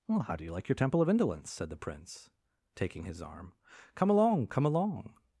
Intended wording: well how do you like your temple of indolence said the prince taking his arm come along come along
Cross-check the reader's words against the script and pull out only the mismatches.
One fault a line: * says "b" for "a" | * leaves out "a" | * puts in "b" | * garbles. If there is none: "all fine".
all fine